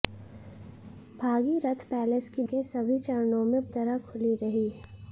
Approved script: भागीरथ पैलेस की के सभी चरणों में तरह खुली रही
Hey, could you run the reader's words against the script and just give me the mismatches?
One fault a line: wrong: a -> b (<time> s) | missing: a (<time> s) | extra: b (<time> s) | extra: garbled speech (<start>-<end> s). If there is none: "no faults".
no faults